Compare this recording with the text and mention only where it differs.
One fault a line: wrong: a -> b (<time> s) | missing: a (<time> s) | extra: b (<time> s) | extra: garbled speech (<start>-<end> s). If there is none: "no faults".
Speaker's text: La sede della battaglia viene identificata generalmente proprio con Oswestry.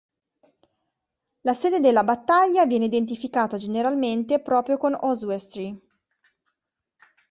no faults